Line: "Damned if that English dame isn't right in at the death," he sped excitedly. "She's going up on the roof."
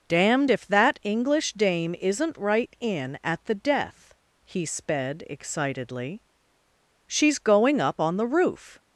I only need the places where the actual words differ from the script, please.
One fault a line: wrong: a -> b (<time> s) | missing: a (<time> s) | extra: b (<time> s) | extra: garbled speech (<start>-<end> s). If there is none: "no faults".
no faults